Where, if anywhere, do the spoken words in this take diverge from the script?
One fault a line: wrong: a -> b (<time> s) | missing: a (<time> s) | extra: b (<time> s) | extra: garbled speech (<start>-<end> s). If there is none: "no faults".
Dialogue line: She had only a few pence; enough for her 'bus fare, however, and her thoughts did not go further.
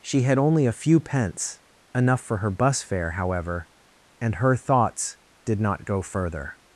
no faults